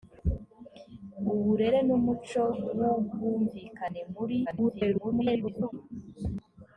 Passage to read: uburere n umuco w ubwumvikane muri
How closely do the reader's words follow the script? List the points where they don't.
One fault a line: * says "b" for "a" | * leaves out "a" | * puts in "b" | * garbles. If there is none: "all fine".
* garbles